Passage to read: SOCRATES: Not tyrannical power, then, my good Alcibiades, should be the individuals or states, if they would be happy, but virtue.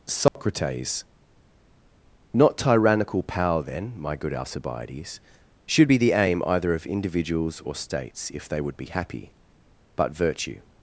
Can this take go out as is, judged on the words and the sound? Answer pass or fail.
fail